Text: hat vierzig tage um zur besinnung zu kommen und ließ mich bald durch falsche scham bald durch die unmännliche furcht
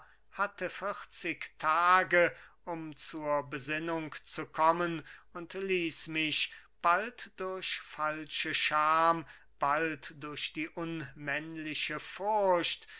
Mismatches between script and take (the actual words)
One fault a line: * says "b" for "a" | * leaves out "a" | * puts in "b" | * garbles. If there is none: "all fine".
* says "hatte" for "hat"